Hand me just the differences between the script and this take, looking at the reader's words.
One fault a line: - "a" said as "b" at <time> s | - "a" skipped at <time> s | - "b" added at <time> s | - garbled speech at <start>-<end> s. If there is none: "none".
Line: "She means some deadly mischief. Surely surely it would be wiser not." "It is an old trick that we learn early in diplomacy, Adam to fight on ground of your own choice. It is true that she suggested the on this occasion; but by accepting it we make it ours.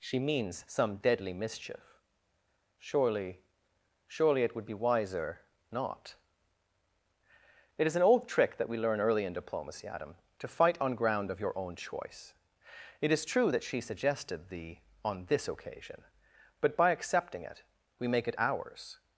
none